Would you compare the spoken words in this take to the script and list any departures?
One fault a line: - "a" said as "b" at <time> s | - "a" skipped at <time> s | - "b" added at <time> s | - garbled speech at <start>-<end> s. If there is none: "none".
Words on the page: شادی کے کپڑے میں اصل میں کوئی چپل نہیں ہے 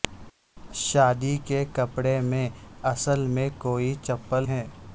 - "نہیں" skipped at 4.4 s